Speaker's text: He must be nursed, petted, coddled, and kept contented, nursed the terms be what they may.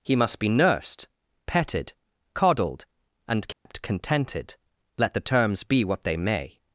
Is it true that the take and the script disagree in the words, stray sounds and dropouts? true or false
true